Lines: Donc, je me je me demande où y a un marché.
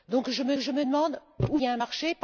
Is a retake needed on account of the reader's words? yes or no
no